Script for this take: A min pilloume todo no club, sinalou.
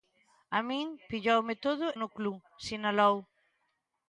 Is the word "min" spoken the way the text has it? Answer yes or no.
yes